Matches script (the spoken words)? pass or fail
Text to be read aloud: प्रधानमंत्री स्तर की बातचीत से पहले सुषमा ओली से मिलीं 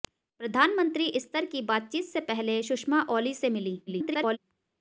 fail